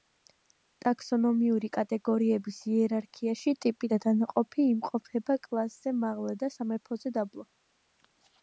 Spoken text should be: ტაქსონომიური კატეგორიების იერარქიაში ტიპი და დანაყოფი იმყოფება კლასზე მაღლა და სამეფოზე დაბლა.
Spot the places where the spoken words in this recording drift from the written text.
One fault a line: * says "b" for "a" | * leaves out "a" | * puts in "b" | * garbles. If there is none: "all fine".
all fine